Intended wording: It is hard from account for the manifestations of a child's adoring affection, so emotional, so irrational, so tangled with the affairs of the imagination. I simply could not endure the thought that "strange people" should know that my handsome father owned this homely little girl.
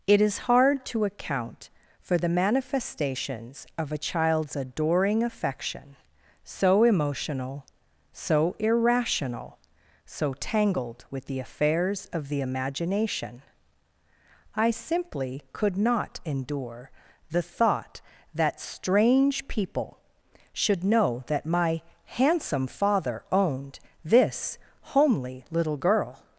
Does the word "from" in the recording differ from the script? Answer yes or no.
yes